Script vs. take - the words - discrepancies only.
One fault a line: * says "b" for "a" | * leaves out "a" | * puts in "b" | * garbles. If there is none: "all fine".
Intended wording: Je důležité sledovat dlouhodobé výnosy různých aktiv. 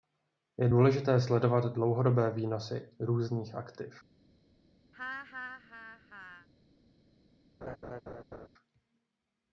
all fine